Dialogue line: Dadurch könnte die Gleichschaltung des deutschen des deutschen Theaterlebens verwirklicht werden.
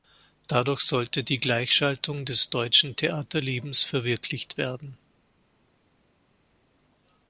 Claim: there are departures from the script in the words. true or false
true